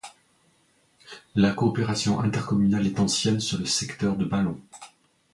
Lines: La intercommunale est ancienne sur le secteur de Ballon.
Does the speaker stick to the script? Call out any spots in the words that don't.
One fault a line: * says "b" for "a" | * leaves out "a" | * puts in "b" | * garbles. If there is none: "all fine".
* puts in "coopération"